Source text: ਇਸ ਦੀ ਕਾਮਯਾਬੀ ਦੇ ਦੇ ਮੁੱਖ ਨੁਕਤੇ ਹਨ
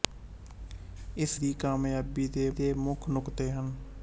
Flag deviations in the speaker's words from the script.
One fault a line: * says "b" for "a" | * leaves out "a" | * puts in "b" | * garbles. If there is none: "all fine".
all fine